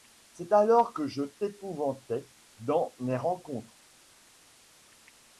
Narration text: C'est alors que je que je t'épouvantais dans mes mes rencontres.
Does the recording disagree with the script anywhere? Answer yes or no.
yes